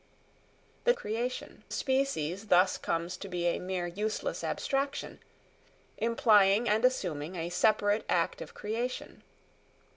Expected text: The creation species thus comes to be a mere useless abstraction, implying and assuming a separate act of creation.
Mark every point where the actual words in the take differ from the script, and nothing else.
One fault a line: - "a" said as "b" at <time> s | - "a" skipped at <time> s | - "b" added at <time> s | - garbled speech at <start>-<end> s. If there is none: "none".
none